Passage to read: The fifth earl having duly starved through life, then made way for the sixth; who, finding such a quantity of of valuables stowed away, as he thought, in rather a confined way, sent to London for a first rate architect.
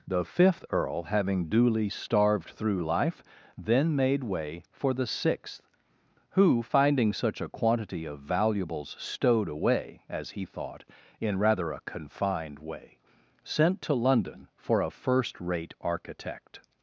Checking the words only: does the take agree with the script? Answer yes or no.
no